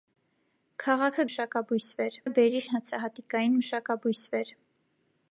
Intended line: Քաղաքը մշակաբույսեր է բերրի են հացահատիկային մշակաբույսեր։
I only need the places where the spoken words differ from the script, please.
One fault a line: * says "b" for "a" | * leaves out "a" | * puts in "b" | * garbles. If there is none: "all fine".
all fine